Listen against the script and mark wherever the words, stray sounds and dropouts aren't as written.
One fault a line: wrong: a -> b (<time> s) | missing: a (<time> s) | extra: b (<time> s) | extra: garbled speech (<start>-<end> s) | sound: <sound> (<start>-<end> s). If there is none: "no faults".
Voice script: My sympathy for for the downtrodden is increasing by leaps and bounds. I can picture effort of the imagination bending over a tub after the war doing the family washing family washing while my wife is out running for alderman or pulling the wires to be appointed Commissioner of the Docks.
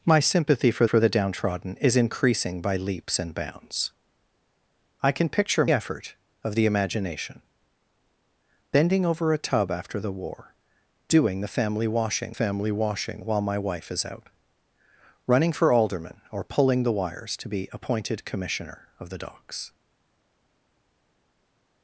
no faults